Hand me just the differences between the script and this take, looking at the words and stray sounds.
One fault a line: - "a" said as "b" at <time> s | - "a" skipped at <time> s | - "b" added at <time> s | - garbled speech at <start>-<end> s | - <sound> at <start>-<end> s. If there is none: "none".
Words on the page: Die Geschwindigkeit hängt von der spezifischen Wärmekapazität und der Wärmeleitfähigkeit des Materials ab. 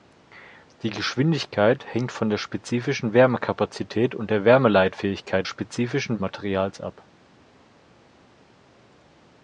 - "des" said as "spezifischen" at 5.5 s